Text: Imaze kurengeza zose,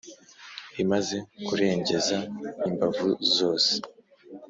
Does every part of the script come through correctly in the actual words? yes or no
no